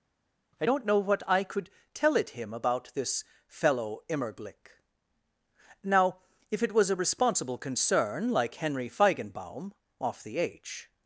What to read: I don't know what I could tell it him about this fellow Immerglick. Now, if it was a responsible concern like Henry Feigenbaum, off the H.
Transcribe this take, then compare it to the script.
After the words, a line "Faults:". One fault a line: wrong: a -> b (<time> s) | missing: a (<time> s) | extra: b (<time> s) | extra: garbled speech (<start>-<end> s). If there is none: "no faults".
I don't know what I could tell it him about this fellow Immerglick. Now, if it was a responsible concern like Henry Feigenbaum, off the H.
Faults:
no faults